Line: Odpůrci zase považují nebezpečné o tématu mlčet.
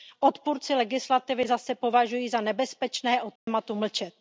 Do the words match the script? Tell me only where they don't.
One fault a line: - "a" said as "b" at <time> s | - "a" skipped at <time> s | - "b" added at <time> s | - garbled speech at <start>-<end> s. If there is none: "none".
- "legislativy" added at 0.8 s
- "za" added at 2.3 s